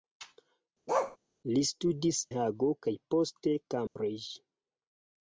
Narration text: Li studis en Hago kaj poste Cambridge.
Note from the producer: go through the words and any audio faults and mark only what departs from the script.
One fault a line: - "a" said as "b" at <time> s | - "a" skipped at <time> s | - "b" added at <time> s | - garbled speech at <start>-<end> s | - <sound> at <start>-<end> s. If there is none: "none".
- bark at 0.9-1.2 s
- "en" skipped at 2.2 s
- dropout at 3.9-4.0 s